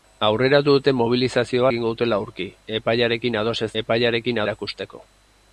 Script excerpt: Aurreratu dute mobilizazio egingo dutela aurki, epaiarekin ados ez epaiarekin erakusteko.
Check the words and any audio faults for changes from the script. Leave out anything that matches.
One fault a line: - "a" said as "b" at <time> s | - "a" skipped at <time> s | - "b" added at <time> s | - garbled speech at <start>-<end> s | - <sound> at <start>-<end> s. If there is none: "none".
none